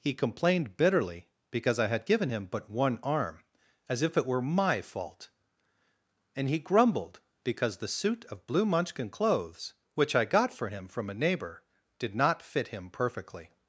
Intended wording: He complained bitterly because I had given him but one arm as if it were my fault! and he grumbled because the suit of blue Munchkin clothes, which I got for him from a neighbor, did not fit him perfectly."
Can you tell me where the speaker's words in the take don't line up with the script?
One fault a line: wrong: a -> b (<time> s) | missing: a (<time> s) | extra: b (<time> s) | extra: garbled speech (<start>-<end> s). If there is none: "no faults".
no faults